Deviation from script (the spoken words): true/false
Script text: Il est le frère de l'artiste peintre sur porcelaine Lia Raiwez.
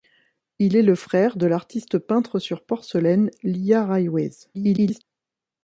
true